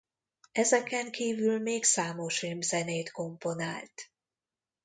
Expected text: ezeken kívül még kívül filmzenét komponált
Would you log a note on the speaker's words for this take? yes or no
yes